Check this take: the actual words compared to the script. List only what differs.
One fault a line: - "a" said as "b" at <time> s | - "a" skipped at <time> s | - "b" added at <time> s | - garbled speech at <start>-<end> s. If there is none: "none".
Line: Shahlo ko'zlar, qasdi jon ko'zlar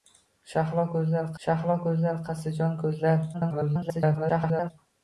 - "shahlo ko'zlar" added at 1.5 s
- garbled speech at 3.3-4.7 s